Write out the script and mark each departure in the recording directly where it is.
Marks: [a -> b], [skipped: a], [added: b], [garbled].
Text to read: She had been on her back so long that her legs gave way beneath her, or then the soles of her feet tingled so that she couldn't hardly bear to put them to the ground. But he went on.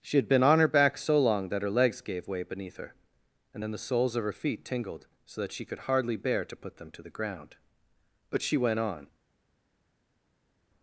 She had been on her back so long that her legs gave way beneath her, [or -> and] then the soles of her feet tingled so that she [couldn't -> could] hardly bear to put them to the ground. But [he -> she] went on.